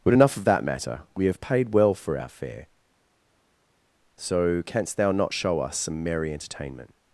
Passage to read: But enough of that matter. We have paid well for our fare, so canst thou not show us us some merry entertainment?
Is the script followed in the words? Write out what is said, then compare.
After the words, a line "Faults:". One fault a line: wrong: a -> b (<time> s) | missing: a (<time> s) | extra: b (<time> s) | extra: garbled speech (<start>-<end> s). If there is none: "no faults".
But enough of that matter. We have paid well for our fare, so canst thou not show us some merry entertainment?
Faults:
missing: us (5.8 s)